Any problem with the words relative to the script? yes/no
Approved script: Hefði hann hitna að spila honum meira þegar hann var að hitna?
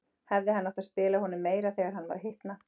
yes